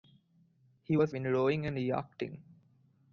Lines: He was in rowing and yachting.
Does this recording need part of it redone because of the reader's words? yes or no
no